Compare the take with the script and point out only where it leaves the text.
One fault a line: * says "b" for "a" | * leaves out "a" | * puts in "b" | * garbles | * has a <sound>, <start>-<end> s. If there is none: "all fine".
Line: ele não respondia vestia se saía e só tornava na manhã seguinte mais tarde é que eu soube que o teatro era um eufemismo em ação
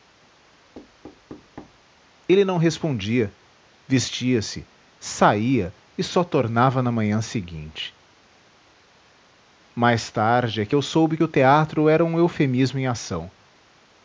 * has a thud, 0.7-1.8 s
* leaves out "que"